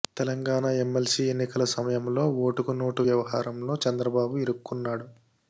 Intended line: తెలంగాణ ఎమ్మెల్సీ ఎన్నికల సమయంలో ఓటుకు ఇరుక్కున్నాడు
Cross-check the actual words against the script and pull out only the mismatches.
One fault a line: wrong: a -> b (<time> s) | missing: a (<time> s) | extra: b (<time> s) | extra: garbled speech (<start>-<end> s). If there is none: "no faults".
extra: నోటు వ్యవహారంలో చంద్రబాబు (2.8 s)